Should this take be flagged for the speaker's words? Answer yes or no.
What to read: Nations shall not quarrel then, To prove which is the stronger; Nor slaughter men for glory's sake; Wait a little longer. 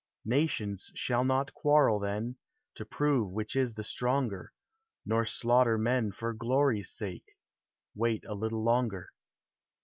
no